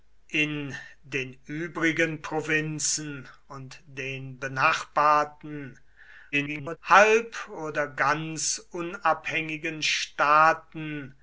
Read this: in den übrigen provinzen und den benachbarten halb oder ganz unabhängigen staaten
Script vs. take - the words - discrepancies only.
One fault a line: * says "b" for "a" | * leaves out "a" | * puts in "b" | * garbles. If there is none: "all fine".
* garbles